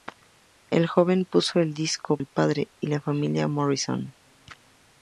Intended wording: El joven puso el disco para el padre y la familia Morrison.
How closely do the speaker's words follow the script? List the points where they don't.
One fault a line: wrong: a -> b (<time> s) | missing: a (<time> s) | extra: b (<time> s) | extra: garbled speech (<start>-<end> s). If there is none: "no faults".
missing: para (2.2 s)